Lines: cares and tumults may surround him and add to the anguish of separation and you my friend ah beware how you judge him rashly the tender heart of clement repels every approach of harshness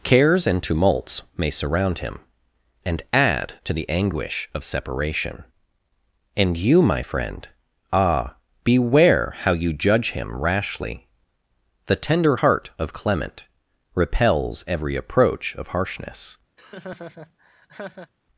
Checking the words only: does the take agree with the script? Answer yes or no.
yes